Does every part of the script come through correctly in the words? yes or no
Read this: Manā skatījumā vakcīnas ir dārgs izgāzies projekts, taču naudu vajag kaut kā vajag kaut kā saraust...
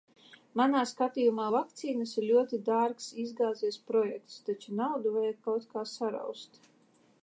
no